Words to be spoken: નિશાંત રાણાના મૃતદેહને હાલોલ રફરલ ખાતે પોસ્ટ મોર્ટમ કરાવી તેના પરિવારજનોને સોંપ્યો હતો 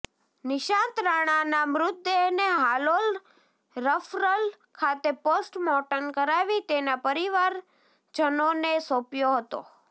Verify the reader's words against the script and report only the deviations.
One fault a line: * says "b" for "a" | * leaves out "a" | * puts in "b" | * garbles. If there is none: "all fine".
all fine